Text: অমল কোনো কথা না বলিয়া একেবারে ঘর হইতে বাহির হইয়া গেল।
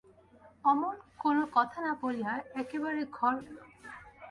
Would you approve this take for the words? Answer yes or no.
no